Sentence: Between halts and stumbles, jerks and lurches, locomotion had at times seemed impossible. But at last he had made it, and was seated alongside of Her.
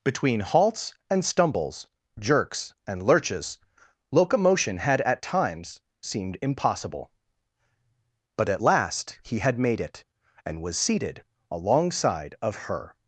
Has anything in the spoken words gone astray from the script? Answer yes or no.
no